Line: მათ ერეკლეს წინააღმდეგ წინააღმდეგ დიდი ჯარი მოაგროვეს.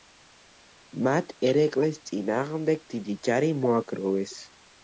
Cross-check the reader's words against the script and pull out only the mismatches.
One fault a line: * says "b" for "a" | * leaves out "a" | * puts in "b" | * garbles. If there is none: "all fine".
* leaves out "წინააღმდეგ"